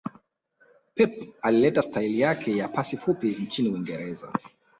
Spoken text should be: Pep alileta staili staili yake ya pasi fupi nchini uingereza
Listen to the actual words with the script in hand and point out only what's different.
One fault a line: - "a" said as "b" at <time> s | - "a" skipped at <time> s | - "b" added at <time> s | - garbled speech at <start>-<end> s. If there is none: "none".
- "staili" skipped at 2.2 s